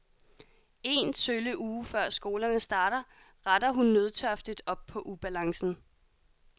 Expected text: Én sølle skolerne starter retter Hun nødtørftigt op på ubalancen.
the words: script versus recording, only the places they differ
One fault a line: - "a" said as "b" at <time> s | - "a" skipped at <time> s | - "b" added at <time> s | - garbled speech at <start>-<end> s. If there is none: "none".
- "uge før" added at 1.6 s